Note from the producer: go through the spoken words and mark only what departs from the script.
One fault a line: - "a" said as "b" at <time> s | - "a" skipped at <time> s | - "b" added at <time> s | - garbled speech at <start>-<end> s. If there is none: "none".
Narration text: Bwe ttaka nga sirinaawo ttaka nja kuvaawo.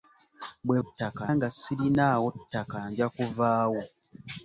none